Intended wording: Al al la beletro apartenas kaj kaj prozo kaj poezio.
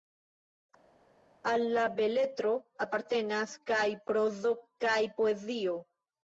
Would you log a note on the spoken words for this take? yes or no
yes